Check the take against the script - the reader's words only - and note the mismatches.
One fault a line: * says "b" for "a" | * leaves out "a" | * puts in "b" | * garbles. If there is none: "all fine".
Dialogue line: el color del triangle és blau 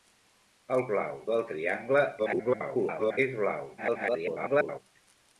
* says "blau" for "color"
* garbles
* garbles